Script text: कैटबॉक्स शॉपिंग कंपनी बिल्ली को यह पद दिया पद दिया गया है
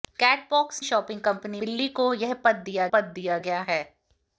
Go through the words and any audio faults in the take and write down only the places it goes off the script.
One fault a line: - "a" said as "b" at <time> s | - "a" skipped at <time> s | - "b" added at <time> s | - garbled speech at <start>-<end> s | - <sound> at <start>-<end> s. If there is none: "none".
none